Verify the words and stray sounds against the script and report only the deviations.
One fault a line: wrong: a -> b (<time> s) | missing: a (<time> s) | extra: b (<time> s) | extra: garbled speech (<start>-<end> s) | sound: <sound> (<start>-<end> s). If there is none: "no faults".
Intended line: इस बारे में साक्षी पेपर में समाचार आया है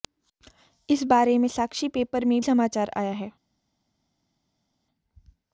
no faults